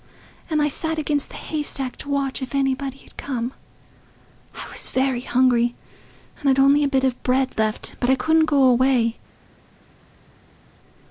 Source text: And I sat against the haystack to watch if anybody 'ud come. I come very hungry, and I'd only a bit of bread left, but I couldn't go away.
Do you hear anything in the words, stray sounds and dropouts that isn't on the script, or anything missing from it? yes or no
yes